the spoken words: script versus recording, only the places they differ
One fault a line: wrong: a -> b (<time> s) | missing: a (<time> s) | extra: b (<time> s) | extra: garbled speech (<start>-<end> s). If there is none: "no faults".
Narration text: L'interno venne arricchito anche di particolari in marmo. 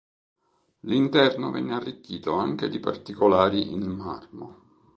no faults